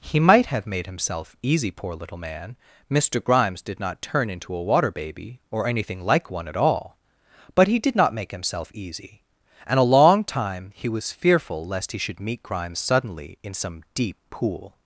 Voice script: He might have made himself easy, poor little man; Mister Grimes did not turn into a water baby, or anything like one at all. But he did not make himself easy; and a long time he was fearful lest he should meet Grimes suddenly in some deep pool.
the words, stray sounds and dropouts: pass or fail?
pass